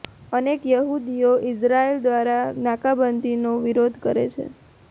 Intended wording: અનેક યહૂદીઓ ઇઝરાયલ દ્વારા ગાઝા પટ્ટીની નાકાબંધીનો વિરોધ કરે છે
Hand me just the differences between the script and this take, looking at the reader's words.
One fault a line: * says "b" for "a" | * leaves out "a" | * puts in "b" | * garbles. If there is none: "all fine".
* leaves out "ગાઝા પટ્ટીની"